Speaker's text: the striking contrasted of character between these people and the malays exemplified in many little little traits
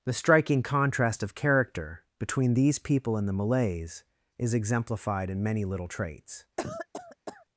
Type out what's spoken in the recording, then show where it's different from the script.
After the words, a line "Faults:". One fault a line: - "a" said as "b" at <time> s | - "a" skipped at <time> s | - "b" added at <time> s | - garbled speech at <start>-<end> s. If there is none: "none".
the striking contrast of character between these people and the malays is exemplified in many little traits
Faults:
- "contrasted" said as "contrast" at 0.6 s
- "is" added at 4.4 s
- "little" skipped at 5.9 s